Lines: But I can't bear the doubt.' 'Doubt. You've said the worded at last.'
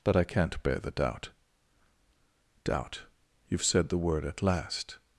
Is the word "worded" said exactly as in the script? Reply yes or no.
no